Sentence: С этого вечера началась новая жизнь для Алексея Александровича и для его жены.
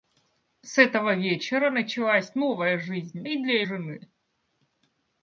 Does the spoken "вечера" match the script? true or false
true